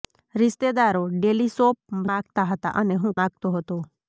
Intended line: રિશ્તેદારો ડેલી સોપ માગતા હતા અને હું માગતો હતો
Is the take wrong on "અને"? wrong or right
right